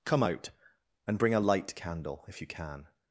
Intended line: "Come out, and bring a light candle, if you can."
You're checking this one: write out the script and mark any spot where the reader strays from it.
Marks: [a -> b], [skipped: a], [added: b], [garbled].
"Come out, and bring a light candle, if you can."